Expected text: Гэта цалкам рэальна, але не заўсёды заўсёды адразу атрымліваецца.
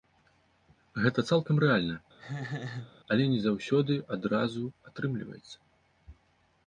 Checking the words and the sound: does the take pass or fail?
fail